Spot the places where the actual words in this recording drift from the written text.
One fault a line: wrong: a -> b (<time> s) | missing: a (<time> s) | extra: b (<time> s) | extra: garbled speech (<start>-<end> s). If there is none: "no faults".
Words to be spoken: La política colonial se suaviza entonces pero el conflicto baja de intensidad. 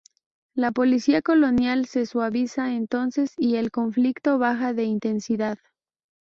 wrong: pero -> y (3.4 s)